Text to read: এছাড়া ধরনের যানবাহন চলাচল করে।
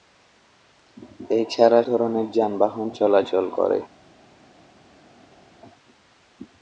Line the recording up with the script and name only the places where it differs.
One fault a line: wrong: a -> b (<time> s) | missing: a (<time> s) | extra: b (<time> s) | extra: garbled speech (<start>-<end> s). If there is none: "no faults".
no faults